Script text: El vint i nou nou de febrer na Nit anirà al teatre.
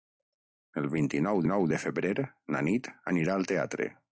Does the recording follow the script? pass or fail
pass